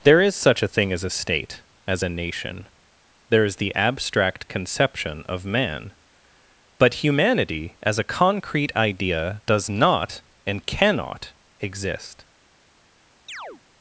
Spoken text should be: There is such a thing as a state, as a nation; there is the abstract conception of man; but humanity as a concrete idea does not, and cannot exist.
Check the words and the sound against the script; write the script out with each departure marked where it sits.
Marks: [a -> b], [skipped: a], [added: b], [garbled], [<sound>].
There is such a thing as a state, as a nation; there is the abstract conception of man; but humanity as a concrete idea does not, and cannot exist. [chirp]